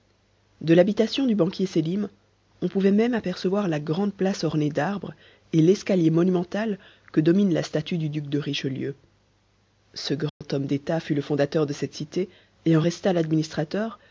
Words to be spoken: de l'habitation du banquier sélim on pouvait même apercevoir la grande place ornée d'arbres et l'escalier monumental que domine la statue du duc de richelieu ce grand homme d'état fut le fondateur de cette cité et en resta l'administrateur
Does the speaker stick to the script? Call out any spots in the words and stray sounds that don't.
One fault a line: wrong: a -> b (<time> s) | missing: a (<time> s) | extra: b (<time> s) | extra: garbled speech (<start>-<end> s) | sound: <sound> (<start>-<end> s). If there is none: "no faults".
sound: dropout (10.3-10.4 s)